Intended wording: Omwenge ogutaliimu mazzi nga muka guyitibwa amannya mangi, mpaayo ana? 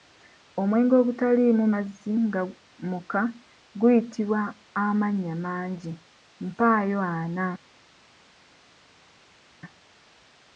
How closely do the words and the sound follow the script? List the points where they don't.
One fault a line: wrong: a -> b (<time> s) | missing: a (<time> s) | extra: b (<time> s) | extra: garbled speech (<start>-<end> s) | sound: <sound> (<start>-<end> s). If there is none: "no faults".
no faults